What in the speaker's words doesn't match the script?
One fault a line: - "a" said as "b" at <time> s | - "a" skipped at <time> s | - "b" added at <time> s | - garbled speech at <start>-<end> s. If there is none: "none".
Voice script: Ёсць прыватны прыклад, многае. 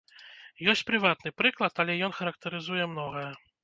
- "але ён характарызуе" added at 1.9 s